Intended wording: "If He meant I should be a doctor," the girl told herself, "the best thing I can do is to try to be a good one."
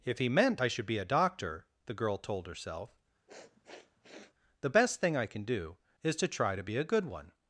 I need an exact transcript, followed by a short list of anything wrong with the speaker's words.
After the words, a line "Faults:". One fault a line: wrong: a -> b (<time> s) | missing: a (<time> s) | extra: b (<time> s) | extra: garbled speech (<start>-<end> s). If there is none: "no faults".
"If He meant I should be a doctor," the girl told herself, "the best thing I can do is to try to be a good one."
Faults:
no faults